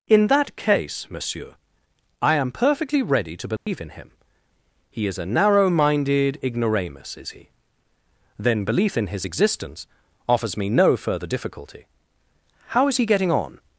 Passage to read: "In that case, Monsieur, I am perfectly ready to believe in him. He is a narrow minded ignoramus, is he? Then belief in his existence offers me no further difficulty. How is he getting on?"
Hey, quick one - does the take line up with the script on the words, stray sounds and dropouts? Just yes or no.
no